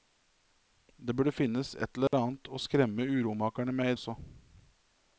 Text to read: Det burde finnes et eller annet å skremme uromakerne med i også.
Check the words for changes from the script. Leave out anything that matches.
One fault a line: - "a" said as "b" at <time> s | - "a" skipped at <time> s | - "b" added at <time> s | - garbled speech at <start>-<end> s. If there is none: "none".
none